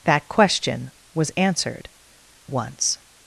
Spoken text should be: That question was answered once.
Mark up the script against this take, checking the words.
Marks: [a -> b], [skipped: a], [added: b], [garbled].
That question was answered once.